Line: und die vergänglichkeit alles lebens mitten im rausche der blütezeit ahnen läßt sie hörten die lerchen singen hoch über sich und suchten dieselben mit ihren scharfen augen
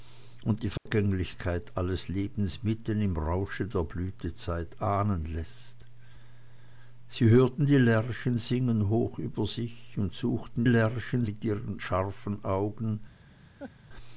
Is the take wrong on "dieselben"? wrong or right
wrong